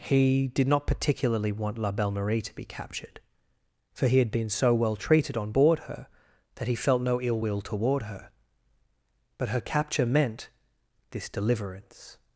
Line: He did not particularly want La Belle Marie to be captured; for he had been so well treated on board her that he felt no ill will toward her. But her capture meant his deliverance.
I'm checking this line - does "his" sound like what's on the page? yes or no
no